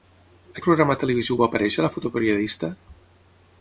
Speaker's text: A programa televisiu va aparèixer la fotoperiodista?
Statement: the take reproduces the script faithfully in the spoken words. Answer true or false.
true